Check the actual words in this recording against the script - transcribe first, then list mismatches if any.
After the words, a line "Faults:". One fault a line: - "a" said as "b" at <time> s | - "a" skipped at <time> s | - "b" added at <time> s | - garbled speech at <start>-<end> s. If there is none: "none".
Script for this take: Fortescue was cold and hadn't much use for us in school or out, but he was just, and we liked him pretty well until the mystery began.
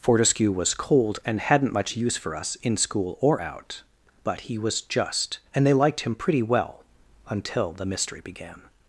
Fortescue was cold and hadn't much use for us in school or out, but he was just, and they liked him pretty well until the mystery began.
Faults:
- "we" said as "they" at 5.7 s